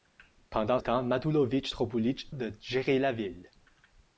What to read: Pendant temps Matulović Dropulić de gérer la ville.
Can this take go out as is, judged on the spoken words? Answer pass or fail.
pass